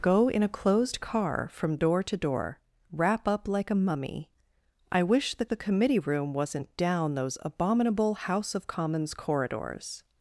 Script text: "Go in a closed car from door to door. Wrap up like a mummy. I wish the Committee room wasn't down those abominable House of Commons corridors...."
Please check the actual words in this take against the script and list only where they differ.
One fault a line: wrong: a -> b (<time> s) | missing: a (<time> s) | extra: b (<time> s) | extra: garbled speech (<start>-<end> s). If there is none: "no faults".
extra: the (5.5 s)